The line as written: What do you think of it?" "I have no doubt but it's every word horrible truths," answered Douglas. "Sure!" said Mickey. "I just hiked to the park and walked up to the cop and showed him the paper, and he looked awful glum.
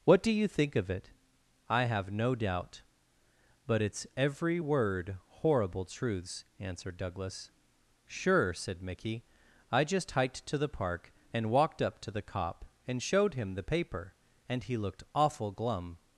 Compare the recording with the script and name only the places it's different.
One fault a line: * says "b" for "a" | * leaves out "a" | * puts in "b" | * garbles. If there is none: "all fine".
all fine